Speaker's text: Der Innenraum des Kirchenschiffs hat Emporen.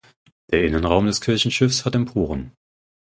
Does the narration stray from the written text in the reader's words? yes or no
no